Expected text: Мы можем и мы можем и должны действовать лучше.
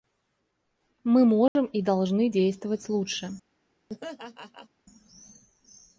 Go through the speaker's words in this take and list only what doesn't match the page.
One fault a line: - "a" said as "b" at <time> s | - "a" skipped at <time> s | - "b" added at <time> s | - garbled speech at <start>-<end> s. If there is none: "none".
- "мы можем и" skipped at 1.8 s